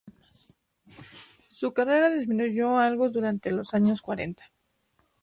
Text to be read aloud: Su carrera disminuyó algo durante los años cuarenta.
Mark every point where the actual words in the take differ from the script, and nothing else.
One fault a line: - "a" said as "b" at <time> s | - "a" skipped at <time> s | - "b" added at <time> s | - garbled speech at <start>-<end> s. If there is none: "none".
none